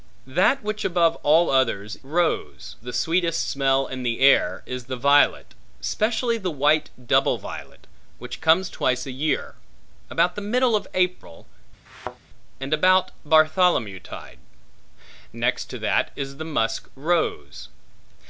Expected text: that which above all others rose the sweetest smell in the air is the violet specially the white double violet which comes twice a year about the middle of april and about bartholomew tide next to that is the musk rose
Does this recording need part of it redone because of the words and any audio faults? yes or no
yes